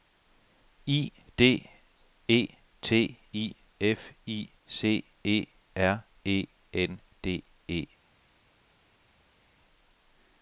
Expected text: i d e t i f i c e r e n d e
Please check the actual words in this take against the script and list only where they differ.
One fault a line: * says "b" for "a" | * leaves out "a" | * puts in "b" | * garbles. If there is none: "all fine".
all fine